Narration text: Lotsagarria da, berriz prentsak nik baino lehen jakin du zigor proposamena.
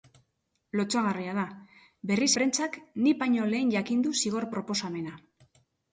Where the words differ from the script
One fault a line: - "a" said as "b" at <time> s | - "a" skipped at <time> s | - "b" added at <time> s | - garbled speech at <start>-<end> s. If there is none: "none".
none